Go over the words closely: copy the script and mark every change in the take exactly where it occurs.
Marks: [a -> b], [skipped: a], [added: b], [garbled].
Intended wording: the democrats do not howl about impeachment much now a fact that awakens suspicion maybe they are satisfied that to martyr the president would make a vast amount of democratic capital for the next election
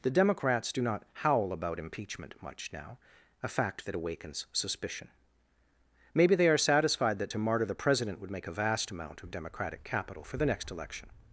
the democrats do not howl about impeachment much now a fact that awakens suspicion maybe they are satisfied that to martyr the president would make a vast amount of democratic capital for the next election